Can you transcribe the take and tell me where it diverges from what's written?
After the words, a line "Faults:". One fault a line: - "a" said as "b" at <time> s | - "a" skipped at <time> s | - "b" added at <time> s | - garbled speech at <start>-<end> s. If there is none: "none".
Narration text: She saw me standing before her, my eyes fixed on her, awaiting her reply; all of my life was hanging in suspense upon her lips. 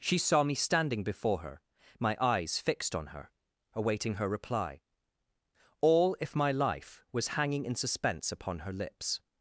She saw me standing before her, my eyes fixed on her, awaiting her reply; all if my life was hanging in suspense upon her lips.
Faults:
- "of" said as "if" at 6.2 s